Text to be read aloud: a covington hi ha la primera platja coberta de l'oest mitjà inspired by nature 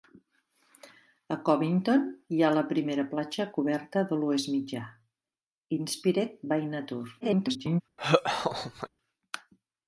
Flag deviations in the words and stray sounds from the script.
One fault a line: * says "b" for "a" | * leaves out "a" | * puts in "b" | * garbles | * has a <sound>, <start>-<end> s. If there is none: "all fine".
* garbles
* has a laugh, 8.0-8.9 s